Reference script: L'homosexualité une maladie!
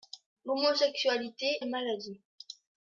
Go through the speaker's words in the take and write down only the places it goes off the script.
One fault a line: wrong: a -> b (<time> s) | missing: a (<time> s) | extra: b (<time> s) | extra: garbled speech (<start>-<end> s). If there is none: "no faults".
no faults